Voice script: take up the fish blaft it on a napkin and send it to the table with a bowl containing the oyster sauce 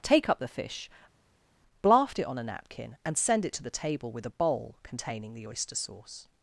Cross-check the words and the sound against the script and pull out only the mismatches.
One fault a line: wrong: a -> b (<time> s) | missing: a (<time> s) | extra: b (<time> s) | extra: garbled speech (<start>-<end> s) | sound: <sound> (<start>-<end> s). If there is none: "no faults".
no faults